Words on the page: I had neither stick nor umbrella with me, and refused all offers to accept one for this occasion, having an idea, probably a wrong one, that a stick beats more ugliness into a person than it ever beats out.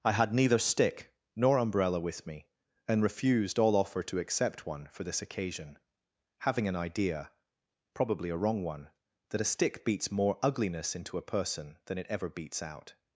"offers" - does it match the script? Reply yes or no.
no